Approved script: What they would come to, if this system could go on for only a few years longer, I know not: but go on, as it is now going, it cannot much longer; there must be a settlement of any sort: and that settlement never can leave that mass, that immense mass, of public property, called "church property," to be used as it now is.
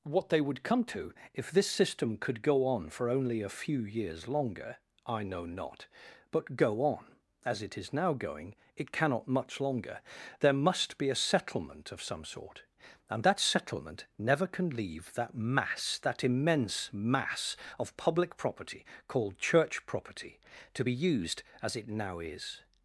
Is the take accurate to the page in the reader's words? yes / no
no